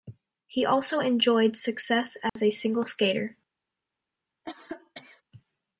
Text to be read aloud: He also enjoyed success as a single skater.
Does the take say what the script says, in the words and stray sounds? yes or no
no